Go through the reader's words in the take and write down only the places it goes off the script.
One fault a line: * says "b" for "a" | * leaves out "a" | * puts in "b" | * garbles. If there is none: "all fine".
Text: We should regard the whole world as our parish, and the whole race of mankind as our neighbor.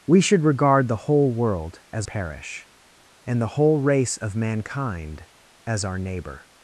* leaves out "our"